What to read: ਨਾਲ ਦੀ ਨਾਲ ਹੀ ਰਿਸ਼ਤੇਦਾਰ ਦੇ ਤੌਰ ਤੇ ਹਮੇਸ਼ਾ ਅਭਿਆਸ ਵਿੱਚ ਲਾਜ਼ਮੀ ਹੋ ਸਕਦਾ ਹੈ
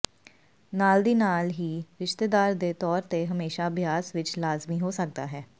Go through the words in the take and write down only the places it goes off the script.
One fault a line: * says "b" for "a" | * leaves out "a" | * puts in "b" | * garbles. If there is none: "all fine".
all fine